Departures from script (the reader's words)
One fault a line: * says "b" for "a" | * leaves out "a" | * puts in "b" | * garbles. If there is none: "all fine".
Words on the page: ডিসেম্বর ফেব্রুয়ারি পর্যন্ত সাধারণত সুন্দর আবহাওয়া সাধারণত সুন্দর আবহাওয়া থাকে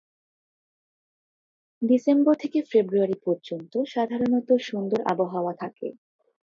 * puts in "থেকে"
* leaves out "সাধারণত সুন্দর আবহাওয়া"